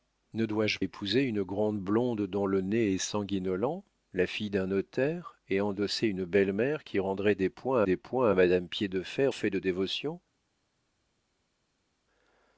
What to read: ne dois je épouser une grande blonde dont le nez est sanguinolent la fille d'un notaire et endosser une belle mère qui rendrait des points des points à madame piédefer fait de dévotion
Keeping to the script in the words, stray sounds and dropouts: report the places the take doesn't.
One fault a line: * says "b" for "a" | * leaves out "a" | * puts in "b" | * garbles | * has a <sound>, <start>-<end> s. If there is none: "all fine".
all fine